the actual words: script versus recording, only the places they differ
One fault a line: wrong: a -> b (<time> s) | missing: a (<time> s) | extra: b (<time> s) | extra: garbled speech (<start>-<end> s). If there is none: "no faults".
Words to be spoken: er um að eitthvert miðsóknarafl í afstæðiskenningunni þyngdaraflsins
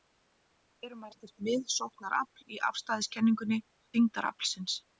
no faults